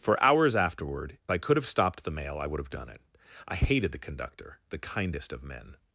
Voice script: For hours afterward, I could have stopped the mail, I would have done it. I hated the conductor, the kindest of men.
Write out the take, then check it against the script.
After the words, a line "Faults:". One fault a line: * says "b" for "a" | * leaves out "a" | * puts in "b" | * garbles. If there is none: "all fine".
For hours afterward, I could have stopped the mail, I would have done it. I hated the conductor, the kindest of men.
Faults:
all fine